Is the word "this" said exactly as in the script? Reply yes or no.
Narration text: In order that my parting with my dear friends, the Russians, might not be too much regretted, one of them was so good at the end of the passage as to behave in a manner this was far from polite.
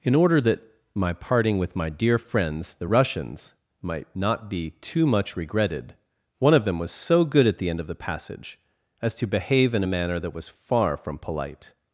no